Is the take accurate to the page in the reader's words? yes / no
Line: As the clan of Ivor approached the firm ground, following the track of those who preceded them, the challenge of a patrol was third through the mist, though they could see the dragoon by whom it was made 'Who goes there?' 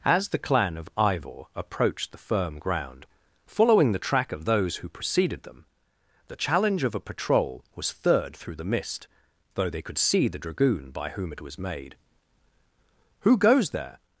yes